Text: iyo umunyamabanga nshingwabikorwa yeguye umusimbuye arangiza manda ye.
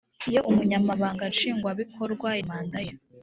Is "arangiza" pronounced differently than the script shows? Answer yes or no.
yes